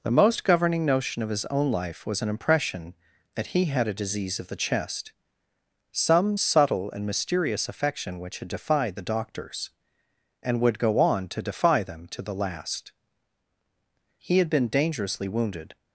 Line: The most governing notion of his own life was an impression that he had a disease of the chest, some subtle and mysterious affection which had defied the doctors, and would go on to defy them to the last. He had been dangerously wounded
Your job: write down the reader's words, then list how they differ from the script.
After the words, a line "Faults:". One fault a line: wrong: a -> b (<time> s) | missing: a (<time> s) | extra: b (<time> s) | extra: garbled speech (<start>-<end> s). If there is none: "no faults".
The most governing notion of his own life was an impression that he had a disease of the chest, some subtle and mysterious affection which had defied the doctors, and would go on to defy them to the last. He had been dangerously wounded
Faults:
no faults